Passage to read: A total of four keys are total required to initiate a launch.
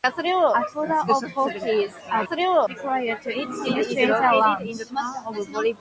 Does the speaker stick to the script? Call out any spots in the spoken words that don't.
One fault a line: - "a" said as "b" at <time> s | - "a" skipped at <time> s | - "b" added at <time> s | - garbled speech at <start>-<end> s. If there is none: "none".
none